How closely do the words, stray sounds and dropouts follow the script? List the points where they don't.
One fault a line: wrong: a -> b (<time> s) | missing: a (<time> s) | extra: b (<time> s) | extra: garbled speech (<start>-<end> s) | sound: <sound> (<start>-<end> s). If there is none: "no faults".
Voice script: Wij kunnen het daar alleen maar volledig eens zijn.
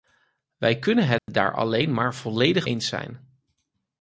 sound: dropout (1.2-1.3 s)